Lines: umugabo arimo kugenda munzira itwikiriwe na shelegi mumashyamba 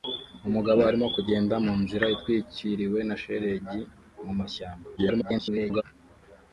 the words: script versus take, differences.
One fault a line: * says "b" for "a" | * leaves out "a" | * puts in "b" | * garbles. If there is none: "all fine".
* garbles